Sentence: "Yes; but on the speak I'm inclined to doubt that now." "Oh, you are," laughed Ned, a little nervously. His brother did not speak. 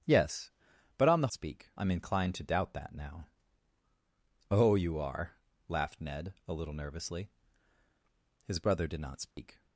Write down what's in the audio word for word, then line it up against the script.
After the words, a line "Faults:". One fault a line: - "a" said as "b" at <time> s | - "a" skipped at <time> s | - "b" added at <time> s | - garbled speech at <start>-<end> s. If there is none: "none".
"Yes; but on the speak I'm inclined to doubt that now." "Oh, you are," laughed Ned, a little nervously. His brother did not speak.
Faults:
none